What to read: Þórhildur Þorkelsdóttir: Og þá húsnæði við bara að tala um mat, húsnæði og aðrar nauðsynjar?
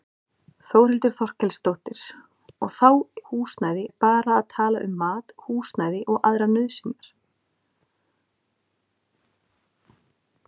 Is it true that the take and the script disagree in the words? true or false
false